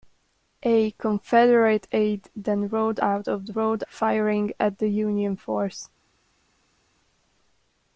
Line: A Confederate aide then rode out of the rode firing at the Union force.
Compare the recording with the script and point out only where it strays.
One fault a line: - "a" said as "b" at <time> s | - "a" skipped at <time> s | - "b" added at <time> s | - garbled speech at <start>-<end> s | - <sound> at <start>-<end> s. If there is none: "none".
none